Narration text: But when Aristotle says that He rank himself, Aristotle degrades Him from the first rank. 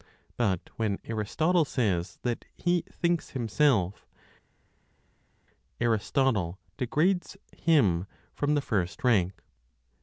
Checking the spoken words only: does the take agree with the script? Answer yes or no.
no